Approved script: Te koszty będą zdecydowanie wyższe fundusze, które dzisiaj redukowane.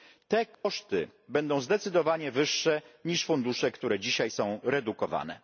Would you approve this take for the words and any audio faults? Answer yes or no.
no